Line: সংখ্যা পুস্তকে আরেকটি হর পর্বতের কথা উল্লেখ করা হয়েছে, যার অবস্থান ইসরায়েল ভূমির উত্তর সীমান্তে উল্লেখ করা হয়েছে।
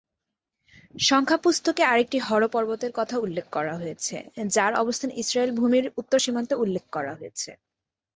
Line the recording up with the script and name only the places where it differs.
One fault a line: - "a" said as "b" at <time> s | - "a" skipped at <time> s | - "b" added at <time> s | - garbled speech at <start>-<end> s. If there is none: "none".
none